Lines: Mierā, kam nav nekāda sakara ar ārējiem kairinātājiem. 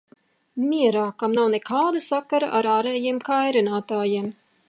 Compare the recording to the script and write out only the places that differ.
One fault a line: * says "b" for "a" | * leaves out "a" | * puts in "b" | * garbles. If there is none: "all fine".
all fine